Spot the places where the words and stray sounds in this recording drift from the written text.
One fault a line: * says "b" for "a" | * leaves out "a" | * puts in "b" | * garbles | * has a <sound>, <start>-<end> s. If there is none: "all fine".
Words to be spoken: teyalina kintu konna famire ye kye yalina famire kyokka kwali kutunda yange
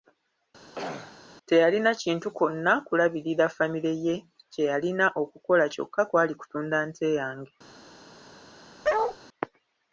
* has a throat clearing, 0.8-1.2 s
* puts in "kulabirira"
* says "okukola" for "famire"
* puts in "nte"
* has a bark, 8.8-9.2 s